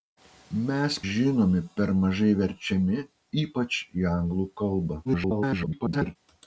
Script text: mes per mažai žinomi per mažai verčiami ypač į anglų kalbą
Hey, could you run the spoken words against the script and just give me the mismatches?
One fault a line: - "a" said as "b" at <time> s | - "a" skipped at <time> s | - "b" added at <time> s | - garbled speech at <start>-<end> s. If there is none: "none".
- "per mažai" skipped at 0.9 s
- garbled speech at 5.0-6.2 s